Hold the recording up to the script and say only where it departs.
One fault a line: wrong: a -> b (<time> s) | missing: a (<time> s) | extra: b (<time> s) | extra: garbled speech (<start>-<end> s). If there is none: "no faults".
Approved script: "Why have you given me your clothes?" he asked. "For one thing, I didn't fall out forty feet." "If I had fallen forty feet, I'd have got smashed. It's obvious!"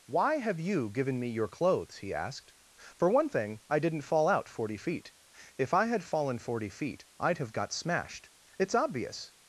no faults